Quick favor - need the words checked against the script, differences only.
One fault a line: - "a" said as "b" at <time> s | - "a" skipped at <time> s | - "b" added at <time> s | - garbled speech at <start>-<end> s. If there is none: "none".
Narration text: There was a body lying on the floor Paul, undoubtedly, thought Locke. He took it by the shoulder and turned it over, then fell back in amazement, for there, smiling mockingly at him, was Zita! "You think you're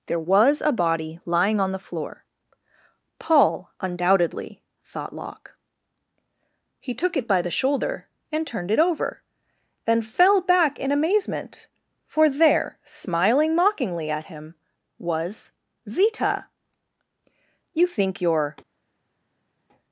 none